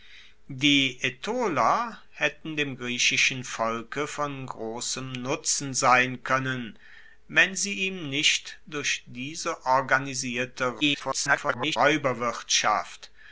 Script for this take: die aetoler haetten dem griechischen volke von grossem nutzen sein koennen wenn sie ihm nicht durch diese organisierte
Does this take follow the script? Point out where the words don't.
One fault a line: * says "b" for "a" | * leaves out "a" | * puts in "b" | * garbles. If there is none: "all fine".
* garbles